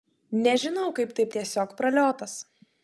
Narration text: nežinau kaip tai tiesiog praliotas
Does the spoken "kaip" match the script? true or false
true